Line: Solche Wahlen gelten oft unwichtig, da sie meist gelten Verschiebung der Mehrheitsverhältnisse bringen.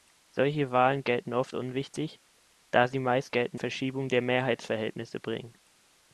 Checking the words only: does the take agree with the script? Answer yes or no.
yes